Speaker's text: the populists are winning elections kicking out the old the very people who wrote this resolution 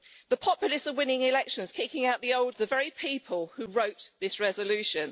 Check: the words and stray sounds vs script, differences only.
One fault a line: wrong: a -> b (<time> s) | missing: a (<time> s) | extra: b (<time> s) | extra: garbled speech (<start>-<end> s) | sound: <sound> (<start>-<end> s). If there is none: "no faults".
no faults